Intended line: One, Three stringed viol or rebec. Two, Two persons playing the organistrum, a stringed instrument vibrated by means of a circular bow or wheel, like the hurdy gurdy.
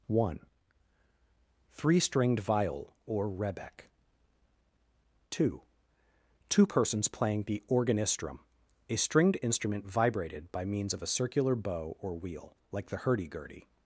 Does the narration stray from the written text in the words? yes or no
no